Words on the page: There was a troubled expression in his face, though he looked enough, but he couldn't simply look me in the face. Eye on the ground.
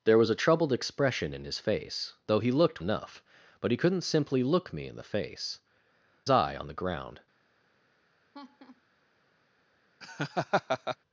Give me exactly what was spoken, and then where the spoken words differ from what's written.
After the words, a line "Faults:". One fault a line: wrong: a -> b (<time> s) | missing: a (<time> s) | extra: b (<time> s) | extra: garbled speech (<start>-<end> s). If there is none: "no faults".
There was a troubled expression in his face, though he looked enough, but he couldn't simply look me in the face. Eye on the ground.
Faults:
no faults